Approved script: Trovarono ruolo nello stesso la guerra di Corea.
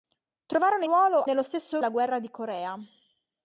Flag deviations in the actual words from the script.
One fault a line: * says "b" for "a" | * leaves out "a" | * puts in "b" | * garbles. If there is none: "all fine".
all fine